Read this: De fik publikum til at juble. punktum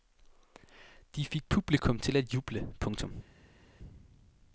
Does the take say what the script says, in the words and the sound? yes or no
yes